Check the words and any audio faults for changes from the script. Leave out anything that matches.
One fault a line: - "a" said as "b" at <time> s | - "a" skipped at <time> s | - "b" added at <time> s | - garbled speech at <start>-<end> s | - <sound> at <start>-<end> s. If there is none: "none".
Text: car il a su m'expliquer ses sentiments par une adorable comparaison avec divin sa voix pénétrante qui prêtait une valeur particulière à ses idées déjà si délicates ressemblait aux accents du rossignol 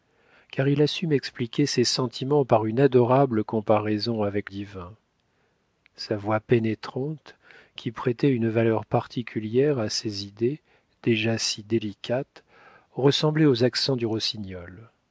none